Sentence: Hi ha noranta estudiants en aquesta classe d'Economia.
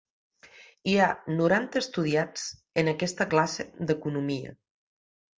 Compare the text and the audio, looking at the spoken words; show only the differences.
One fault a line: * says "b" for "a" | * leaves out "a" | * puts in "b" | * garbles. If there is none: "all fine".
all fine